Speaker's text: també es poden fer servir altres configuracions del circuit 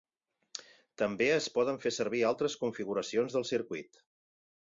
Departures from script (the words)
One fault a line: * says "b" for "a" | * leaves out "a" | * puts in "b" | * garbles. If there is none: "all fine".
all fine